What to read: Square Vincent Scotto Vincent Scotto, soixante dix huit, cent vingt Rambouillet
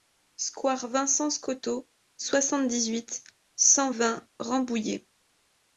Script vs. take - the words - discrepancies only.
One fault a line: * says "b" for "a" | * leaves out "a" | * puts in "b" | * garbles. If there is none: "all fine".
* leaves out "Vincent Scotto"